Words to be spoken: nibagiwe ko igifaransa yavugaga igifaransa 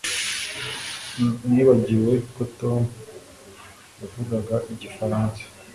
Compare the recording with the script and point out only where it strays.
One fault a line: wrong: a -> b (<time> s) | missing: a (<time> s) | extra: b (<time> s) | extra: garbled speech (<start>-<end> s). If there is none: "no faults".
wrong: igifaransa -> tom (2.6 s)